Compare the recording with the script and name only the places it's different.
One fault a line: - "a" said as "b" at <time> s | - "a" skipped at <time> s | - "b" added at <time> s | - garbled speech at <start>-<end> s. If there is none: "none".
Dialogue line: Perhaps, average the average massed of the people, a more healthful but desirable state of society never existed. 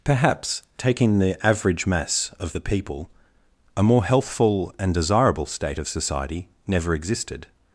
- "average" said as "taking" at 0.8 s
- "massed" said as "mass" at 1.9 s
- "but" said as "and" at 4.8 s